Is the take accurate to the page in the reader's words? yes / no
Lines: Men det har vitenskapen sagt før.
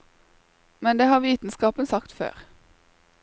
yes